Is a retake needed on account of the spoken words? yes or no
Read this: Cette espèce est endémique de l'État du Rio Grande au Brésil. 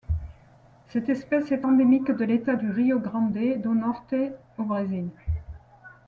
yes